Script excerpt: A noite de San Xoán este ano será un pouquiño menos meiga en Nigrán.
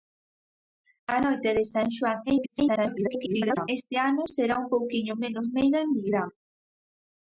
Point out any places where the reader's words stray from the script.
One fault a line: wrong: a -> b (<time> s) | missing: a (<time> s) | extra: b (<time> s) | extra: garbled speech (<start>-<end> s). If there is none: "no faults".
extra: garbled speech (2.3-3.7 s)